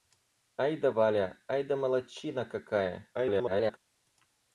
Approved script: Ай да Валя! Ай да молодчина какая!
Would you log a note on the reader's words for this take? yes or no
yes